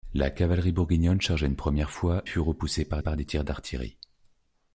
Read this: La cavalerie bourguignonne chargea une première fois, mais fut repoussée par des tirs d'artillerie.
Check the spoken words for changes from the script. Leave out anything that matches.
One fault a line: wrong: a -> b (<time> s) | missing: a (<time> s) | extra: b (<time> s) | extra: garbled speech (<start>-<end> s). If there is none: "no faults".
missing: mais (2.2 s)
extra: par (3.0 s)